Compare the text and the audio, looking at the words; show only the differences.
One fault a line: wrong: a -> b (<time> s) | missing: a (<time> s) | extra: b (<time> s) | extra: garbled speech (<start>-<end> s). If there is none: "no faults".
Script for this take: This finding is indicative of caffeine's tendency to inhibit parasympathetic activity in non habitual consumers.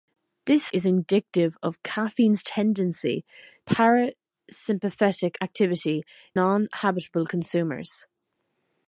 missing: finding (0.7 s)
missing: to inhibit (3.2 s)
missing: in (6.0 s)